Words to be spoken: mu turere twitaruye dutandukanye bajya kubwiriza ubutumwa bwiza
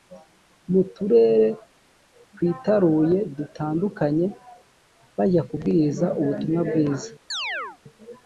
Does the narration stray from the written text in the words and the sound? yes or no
yes